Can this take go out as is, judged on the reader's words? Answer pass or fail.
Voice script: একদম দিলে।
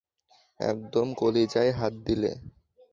fail